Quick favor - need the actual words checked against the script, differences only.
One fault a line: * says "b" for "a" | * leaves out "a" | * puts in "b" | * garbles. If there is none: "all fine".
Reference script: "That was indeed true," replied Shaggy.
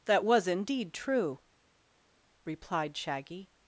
all fine